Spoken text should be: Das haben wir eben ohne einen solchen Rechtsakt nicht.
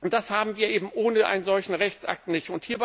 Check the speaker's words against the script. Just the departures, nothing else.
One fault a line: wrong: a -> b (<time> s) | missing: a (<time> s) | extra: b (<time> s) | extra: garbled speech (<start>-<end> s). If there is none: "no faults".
no faults